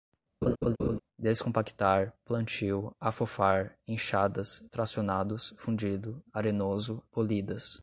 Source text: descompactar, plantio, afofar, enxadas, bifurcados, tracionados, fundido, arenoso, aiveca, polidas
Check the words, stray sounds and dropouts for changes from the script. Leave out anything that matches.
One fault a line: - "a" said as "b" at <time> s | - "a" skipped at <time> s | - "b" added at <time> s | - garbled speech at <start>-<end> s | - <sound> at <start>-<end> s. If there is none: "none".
- laugh at 0.4-1.0 s
- "bifurcados" skipped at 4.6 s
- "aiveca" skipped at 7.0 s